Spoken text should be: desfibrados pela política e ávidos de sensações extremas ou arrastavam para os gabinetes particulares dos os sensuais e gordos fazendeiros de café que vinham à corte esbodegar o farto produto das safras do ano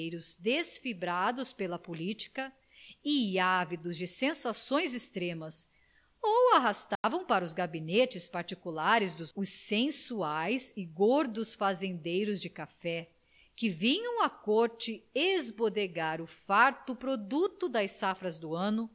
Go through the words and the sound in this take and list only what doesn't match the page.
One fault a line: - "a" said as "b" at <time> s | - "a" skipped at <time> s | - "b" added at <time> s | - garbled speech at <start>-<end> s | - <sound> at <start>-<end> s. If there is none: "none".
- dropout at 7.0-7.0 s